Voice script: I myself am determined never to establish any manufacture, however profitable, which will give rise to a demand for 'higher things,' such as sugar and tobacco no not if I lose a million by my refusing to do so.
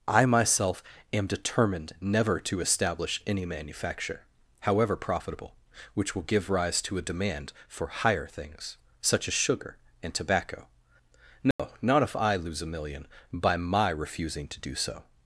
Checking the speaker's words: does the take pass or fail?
pass